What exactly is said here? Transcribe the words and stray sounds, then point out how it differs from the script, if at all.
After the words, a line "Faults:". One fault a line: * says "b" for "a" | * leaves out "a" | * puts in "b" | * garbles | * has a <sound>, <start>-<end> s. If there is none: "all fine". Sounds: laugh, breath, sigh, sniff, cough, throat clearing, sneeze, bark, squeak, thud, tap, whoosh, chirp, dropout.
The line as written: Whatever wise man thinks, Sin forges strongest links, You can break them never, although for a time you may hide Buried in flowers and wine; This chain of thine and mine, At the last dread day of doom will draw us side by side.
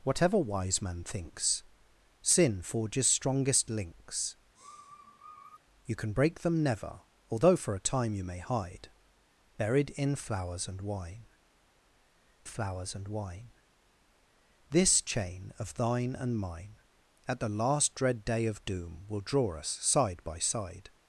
Whatever wise man thinks, Sin forges strongest links, You can break them never, although for a time you may hide Buried in flowers and wine flowers and wine; This chain of thine and mine, At the last dread day of doom will draw us side by side.
Faults:
* has a sniff, 4.5-5.6 s
* puts in "flowers and wine"